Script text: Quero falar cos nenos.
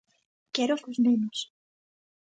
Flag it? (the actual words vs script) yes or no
yes